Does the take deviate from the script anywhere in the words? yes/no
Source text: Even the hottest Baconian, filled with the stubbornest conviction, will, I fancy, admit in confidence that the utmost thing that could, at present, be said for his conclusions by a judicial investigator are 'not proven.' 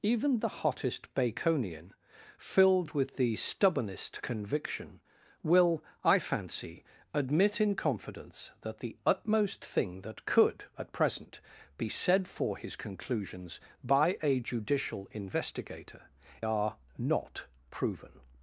no